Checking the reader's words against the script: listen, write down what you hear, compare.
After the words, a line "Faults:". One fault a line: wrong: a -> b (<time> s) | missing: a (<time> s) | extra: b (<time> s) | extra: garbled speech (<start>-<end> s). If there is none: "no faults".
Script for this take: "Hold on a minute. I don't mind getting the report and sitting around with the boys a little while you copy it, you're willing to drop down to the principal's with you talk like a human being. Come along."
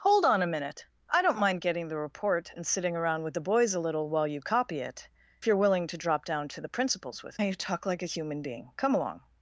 "Hold on a minute. I don't mind getting the report and sitting around with the boys a little while you copy it, you're willing to drop down to the principal's with you talk like a human being. Come along."
Faults:
no faults